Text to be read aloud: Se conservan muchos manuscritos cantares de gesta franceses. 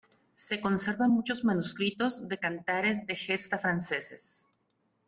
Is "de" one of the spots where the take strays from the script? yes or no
no